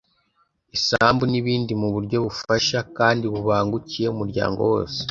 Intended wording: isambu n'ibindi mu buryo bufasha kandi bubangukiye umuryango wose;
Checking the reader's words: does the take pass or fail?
pass